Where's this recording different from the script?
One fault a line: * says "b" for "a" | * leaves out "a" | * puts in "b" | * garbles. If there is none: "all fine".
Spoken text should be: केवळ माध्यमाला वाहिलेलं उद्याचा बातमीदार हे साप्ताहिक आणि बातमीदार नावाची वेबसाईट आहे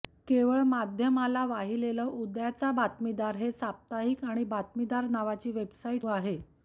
all fine